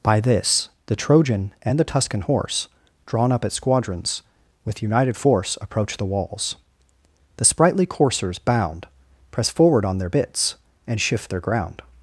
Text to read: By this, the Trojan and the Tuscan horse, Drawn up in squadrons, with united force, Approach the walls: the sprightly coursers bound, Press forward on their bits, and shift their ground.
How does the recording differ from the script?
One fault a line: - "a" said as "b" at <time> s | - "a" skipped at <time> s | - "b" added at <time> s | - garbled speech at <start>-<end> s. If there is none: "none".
- "in" said as "at" at 3.4 s